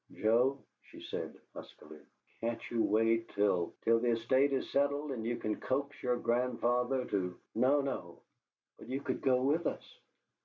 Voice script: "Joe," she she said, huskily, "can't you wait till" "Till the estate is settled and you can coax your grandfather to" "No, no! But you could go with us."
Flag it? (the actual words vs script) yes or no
yes